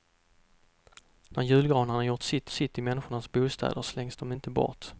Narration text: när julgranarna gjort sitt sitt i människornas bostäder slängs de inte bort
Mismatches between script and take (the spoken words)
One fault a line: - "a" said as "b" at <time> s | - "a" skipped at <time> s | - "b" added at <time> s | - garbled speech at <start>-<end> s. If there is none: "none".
none